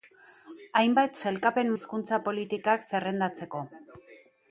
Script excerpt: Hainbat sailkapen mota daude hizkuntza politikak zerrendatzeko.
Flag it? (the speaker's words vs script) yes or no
yes